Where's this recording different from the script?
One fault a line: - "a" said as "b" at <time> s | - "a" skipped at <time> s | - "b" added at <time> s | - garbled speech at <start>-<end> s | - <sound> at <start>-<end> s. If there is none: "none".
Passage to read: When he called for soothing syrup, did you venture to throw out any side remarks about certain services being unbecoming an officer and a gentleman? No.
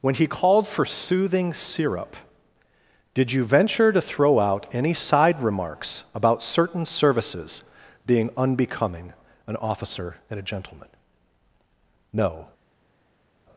none